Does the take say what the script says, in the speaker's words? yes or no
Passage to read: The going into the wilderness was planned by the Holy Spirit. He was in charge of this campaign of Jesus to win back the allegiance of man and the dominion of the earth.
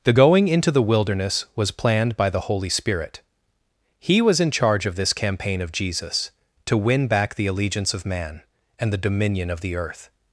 yes